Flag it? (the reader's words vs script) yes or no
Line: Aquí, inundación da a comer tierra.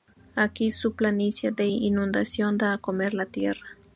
yes